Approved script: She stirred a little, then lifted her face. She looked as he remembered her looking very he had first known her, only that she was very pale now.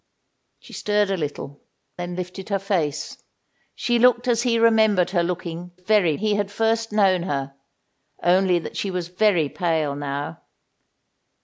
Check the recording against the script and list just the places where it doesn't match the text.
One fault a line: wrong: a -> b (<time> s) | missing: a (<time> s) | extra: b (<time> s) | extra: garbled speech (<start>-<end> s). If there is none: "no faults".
no faults